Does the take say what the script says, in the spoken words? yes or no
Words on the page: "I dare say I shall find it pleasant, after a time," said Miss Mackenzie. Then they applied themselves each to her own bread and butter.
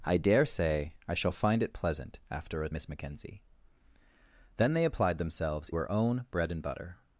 no